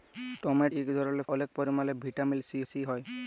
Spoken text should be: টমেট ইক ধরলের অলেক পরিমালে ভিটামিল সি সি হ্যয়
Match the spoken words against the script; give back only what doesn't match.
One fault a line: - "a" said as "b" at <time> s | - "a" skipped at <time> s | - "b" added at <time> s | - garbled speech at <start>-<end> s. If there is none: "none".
none